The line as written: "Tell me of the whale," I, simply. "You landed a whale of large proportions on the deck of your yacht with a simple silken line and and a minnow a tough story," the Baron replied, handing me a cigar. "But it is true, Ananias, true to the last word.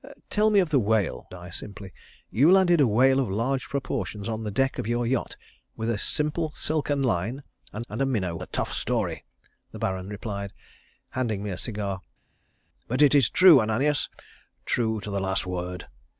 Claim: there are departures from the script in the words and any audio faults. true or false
false